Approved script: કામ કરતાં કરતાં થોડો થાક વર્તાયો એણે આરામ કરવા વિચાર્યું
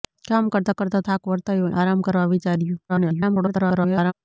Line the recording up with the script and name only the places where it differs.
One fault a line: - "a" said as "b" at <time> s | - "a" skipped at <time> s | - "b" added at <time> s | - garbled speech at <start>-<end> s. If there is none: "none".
- "થોડો" skipped at 1.1 s
- "એણે" skipped at 1.7 s
- garbled speech at 2.9-4.1 s